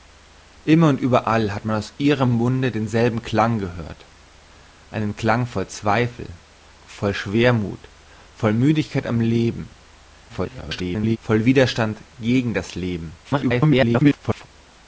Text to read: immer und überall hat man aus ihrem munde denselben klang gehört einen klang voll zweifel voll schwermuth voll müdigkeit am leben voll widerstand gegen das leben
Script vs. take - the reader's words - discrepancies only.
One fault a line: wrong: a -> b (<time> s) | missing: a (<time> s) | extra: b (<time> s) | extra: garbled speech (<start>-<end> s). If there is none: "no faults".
extra: garbled speech (10.3-11.2 s)
extra: garbled speech (13.2-14.5 s)